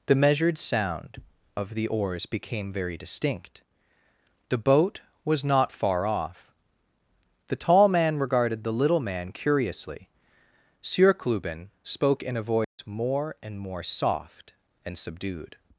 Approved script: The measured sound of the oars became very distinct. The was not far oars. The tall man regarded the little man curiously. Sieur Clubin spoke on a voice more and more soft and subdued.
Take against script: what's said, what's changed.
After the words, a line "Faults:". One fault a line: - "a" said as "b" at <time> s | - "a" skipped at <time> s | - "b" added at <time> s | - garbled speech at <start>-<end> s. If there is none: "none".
The measured sound of the oars became very distinct. The boat was not far off. The tall man regarded the little man curiously. Sieur Clubin spoke in a voice more and more soft and subdued.
Faults:
- "boat" added at 4.6 s
- "oars" said as "off" at 6.0 s
- "on" said as "in" at 12.2 s